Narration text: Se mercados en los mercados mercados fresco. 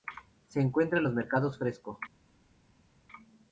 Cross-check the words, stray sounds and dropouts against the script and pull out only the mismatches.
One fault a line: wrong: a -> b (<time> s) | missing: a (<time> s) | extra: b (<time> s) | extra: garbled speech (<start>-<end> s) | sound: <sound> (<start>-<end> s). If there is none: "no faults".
wrong: mercados -> encuentra (0.6 s)
missing: mercados (1.6 s)